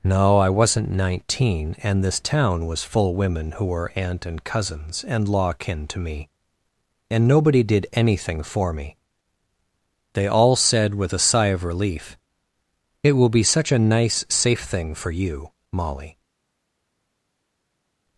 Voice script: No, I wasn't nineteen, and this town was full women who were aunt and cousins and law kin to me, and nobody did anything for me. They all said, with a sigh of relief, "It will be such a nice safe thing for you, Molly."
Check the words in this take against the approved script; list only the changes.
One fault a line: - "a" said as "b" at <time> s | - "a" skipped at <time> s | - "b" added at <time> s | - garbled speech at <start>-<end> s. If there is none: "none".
none